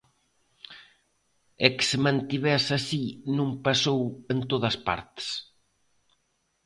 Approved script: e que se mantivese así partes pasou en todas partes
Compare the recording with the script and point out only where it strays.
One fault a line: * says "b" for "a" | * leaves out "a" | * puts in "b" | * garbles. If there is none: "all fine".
* says "non" for "partes"